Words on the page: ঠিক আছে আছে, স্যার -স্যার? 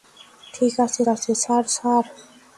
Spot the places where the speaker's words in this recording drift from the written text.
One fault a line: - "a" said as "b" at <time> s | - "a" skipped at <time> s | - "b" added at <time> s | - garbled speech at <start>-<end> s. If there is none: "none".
none